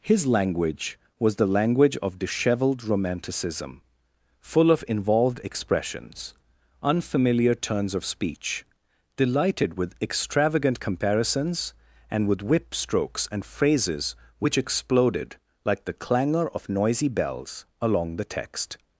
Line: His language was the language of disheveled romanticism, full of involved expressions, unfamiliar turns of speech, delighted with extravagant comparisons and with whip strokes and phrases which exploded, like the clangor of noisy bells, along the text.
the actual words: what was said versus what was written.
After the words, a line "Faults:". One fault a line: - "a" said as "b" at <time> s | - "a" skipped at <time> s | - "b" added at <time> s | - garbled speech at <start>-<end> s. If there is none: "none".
His language was the language of disheveled romanticism, full of involved expressions, unfamiliar turns of speech, delighted with extravagant comparisons and with whip strokes and phrases which exploded, like the clangor of noisy bells, along the text.
Faults:
none